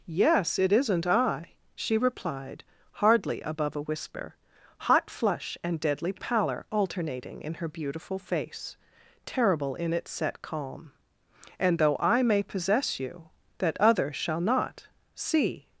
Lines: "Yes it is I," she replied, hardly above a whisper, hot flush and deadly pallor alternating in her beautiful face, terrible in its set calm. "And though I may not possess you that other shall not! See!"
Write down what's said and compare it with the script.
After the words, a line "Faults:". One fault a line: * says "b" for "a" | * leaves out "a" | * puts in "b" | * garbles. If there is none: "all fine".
"Yes it isn't I," she replied, hardly above a whisper, hot flush and deadly pallor alternating in her beautiful face, terrible in its set calm. "And though I may possess you that other shall not! See!"
Faults:
* says "isn't" for "is"
* leaves out "not"